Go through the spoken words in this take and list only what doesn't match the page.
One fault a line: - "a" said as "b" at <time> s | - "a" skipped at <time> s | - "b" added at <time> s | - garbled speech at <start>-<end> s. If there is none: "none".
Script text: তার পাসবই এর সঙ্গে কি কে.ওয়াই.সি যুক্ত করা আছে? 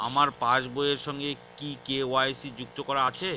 - "তার" said as "আমার" at 0.0 s